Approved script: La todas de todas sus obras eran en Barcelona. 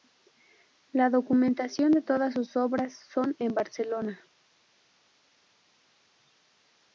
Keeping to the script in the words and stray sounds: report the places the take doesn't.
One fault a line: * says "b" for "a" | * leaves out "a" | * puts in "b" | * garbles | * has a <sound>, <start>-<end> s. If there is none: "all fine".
* says "documentación" for "todas"
* says "son" for "eran"